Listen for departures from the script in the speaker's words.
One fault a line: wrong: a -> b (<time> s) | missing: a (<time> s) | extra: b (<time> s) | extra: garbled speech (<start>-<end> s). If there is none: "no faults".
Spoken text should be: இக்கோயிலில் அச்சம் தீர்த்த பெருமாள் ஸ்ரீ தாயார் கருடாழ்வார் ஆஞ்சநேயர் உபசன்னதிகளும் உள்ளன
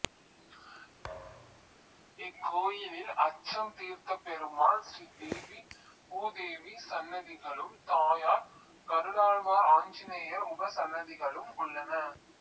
extra: தேவி பூதேவி சன்னதிகளும் (5.2 s)